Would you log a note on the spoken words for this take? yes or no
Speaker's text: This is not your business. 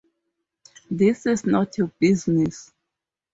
no